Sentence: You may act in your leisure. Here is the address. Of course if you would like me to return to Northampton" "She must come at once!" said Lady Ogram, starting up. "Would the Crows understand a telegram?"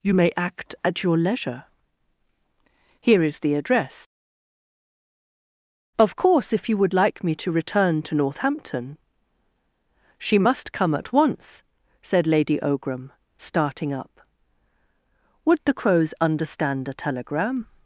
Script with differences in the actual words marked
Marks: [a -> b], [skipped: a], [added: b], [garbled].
You may act [in -> at] your leisure. Here is the address. Of course if you would like me to return to Northampton" "She must come at once!" said Lady Ogram, starting up. "Would the Crows understand a telegram?"